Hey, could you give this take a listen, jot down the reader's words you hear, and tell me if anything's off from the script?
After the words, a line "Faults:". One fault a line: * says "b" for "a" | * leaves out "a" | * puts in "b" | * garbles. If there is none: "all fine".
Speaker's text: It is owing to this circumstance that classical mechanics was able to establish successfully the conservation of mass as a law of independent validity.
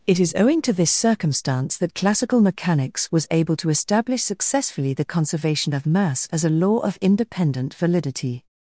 It is owing to this circumstance that classical mechanics was able to establish successfully the conservation of mass as a law of independent validity.
Faults:
all fine